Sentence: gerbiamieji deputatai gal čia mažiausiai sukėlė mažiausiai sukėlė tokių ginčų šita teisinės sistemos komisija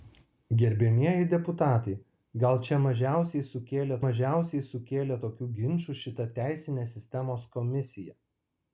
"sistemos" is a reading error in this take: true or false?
false